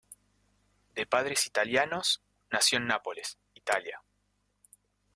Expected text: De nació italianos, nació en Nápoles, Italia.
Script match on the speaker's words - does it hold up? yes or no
no